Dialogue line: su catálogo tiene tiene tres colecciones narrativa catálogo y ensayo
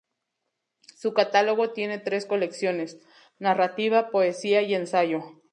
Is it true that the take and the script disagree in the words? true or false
true